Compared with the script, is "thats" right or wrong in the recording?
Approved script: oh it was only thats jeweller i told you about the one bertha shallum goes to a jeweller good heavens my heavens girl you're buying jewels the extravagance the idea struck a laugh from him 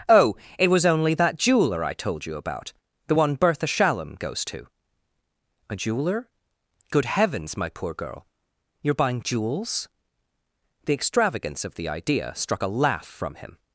wrong